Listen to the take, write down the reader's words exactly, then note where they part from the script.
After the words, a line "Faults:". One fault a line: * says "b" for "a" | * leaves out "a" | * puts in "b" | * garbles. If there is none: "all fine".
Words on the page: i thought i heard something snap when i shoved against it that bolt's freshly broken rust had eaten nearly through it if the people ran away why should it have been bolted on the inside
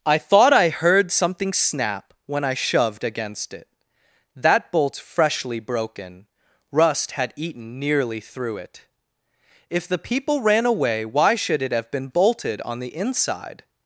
i thought i heard something snap when i shoved against it that bolt's freshly broken rust had eaten nearly through it if the people ran away why should it have been bolted on the inside
Faults:
all fine